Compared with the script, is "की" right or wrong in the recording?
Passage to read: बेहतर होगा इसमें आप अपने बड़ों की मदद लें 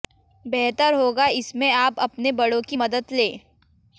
right